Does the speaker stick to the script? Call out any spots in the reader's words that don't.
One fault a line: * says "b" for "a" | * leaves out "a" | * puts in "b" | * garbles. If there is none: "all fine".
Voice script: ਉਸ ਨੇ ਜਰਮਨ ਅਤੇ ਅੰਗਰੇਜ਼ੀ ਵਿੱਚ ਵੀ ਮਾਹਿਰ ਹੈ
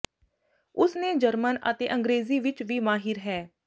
all fine